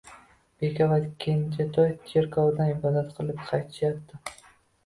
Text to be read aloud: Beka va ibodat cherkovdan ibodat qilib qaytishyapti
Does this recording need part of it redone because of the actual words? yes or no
yes